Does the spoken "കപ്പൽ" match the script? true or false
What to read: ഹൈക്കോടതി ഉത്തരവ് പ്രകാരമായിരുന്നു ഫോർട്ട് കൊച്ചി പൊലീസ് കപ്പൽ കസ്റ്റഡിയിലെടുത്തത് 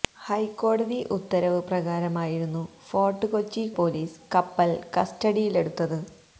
true